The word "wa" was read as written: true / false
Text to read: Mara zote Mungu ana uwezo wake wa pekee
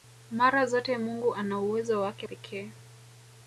false